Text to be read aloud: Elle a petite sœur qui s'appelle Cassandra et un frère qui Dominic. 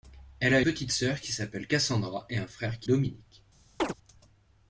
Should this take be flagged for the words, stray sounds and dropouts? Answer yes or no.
yes